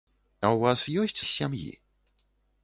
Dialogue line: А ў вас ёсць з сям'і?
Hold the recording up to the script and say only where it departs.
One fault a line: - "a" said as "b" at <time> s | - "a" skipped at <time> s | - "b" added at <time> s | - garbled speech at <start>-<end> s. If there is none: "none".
none